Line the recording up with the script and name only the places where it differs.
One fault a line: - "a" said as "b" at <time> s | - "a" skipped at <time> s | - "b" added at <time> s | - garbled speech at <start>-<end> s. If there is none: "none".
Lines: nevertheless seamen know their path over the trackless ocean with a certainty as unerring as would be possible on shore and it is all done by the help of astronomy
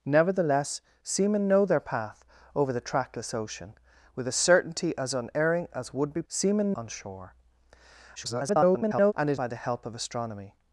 - "possible" said as "seamen" at 6.3 s
- garbled speech at 8.2-9.1 s
- "is all done" skipped at 9.4 s